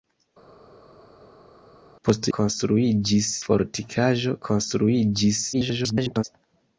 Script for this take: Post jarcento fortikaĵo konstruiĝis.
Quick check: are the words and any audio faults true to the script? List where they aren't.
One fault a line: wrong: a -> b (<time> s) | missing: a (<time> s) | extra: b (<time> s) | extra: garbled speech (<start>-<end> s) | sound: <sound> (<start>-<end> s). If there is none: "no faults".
wrong: jarcento -> konstruiĝis (2.4 s)
extra: garbled speech (5.5-6.2 s)